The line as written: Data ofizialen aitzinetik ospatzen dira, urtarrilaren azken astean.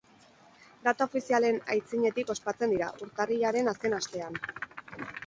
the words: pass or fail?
pass